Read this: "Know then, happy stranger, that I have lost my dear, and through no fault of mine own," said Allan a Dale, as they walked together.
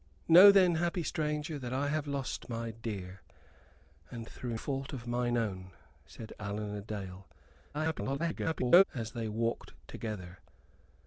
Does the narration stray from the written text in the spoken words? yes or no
yes